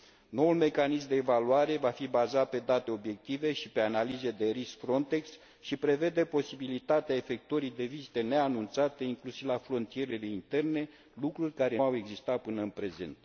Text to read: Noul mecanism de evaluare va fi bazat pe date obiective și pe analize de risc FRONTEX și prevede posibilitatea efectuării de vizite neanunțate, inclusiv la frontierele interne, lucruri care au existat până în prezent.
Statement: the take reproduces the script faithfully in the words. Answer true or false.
true